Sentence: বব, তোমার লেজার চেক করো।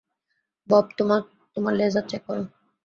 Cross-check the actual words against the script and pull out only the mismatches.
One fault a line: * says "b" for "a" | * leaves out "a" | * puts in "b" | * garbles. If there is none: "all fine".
all fine